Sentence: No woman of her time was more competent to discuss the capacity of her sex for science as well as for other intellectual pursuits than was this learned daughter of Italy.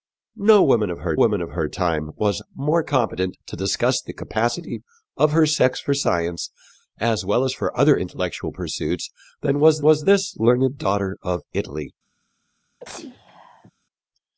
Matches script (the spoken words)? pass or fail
fail